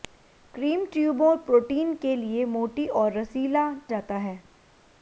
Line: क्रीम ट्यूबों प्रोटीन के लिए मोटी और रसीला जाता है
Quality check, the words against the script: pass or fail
pass